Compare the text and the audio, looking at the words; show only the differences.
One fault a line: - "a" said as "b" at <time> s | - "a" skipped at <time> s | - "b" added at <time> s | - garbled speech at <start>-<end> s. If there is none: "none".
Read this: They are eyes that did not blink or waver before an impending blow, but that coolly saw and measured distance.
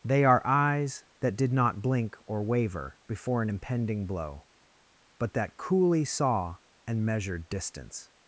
none